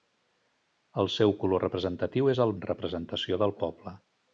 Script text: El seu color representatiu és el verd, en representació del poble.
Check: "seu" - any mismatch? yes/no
no